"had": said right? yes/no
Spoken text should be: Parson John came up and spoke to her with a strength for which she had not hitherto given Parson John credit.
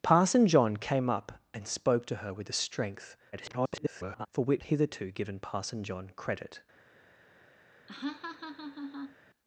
no